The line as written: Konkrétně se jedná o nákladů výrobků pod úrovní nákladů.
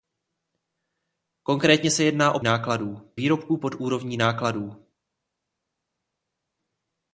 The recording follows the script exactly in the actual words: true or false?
true